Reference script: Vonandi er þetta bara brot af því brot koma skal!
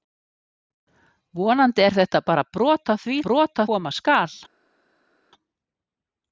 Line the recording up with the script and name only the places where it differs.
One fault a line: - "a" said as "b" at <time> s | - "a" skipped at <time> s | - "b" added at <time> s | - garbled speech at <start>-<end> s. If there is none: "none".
none